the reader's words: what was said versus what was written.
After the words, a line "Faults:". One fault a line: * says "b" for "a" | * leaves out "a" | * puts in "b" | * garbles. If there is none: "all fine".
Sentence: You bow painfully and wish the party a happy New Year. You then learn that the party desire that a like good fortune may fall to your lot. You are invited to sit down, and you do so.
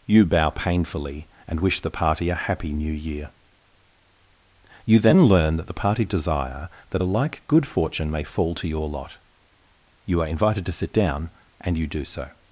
You bow painfully and wish the party a happy New Year. You then learn that the party desire that a like good fortune may fall to your lot. You are invited to sit down, and you do so.
Faults:
all fine